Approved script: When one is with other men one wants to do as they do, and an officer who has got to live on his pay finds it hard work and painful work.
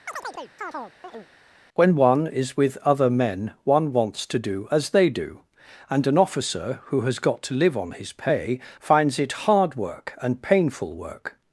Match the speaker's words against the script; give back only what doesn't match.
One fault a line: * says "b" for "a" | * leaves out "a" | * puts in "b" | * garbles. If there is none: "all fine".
all fine